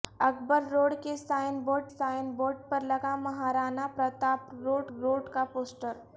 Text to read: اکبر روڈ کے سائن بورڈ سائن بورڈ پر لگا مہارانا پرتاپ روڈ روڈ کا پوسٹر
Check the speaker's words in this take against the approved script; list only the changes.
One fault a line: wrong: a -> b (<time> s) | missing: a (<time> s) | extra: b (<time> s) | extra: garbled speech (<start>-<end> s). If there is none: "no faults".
no faults